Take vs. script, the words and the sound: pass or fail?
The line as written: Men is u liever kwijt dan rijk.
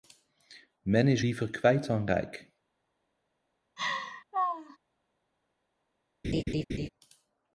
fail